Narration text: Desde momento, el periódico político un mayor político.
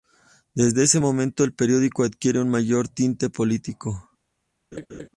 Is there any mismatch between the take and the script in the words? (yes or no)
yes